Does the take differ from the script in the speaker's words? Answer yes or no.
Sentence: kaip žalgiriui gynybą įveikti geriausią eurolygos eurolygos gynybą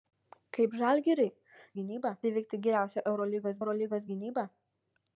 no